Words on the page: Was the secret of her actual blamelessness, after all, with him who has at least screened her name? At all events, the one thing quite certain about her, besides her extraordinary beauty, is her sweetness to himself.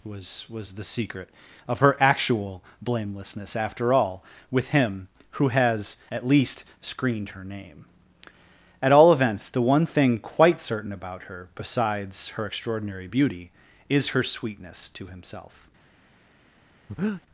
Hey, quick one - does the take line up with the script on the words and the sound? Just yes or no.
no